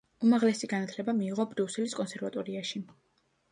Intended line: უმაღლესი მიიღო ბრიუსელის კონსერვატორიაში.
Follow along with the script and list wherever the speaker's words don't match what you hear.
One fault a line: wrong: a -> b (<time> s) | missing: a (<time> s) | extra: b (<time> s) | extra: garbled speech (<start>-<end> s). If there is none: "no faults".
extra: განათლება (0.7 s)